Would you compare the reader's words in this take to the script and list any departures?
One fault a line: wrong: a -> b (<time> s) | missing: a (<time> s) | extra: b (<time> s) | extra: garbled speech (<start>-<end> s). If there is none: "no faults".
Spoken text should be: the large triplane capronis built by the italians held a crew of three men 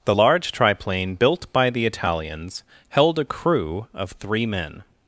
missing: capronis (1.2 s)